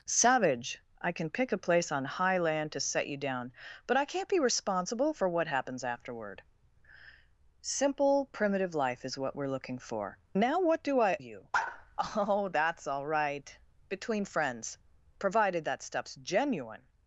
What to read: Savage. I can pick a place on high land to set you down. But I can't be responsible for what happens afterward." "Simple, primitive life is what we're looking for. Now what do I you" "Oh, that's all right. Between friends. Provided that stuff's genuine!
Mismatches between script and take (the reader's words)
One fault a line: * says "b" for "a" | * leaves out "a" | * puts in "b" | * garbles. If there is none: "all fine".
all fine